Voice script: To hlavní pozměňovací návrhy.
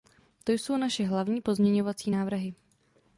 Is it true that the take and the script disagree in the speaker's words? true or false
true